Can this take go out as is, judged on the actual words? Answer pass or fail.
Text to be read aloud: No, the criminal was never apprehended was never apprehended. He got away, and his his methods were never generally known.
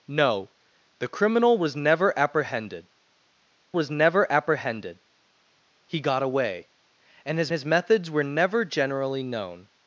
pass